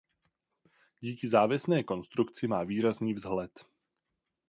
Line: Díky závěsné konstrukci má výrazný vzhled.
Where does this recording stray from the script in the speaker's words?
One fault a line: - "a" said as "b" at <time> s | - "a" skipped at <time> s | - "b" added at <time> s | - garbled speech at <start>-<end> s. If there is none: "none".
none